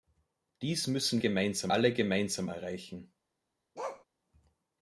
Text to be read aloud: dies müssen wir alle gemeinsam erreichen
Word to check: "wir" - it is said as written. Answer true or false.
false